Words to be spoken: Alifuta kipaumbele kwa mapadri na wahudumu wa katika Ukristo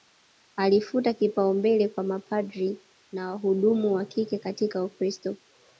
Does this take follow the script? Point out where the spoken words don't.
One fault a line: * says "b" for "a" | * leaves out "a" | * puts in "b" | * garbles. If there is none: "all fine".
* puts in "kike"